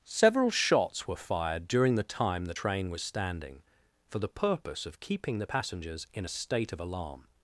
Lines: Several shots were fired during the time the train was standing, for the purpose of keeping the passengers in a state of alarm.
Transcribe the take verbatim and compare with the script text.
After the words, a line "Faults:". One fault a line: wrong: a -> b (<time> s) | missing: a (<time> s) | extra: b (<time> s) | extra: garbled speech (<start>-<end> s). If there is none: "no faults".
Several shots were fired during the time the train was standing, for the purpose of keeping the passengers in a state of alarm.
Faults:
no faults